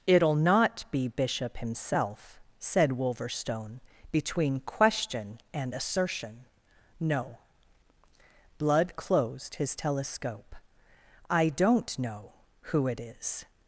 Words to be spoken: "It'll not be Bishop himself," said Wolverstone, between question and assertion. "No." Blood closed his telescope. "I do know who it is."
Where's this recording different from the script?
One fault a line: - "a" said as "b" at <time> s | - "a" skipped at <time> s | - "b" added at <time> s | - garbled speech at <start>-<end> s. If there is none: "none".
- "do" said as "don't" at 11.5 s